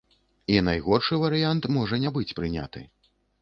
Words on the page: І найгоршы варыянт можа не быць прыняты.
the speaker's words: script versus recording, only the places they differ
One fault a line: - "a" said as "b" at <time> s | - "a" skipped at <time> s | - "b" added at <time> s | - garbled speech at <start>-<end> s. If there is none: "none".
none